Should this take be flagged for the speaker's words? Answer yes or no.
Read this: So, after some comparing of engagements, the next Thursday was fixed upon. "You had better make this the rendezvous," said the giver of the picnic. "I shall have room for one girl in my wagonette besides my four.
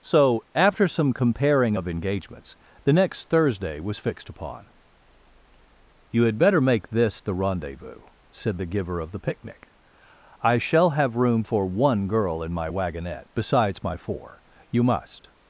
yes